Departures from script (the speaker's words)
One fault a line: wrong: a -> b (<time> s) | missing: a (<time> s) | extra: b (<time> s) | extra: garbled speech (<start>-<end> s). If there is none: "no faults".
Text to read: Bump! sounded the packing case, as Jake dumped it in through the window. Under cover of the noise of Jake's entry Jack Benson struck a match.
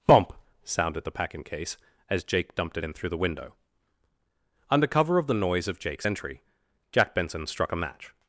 no faults